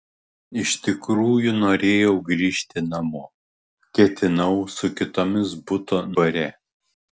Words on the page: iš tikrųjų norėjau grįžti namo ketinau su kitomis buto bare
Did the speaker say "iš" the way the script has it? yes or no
yes